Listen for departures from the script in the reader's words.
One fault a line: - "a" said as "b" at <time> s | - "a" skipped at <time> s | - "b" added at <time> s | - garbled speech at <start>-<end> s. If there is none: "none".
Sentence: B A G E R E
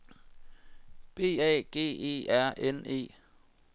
- "N" added at 2.6 s